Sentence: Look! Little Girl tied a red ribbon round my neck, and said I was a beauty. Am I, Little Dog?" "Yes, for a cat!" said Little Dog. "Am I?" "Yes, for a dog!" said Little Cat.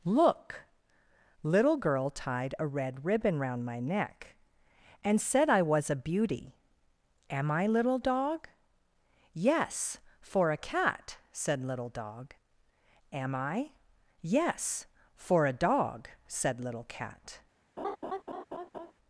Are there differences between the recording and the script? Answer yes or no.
no